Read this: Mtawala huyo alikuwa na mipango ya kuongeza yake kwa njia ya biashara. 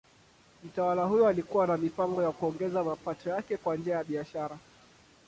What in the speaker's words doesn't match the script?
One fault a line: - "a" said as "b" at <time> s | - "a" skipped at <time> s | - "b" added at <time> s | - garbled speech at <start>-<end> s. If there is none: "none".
- "mapato" added at 2.8 s